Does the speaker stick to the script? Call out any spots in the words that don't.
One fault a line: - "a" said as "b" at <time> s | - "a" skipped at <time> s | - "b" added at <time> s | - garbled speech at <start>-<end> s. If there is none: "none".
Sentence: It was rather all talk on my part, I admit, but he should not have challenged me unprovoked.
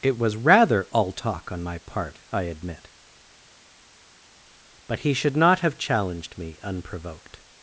none